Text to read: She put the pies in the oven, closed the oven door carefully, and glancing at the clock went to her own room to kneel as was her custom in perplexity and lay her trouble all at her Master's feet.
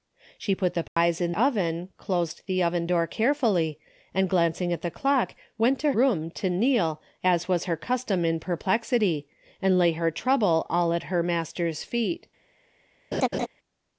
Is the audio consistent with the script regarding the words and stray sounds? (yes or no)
no